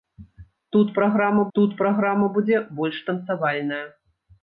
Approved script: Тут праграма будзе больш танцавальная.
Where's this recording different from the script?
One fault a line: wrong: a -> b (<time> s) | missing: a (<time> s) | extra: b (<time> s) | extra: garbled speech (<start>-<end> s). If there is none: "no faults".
extra: тут праграма (1.6 s)